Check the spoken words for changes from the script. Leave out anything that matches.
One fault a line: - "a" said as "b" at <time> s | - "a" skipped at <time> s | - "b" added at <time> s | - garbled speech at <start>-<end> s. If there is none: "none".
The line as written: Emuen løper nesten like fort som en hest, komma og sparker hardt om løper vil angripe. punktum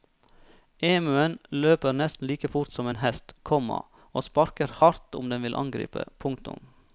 - "løper" said as "den" at 5.3 s